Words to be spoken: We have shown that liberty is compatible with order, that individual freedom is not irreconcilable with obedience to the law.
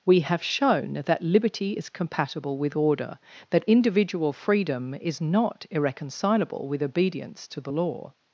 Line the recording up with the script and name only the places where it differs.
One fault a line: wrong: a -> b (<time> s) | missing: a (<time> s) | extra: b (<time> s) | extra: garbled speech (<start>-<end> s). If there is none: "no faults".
no faults